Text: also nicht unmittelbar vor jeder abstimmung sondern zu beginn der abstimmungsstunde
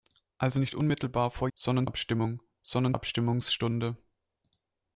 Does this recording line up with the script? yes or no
no